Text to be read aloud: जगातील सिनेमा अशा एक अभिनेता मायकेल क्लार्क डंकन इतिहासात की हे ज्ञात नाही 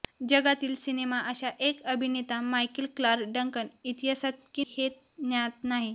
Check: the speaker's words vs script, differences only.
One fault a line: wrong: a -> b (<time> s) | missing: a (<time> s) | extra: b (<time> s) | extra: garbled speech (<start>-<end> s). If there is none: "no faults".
no faults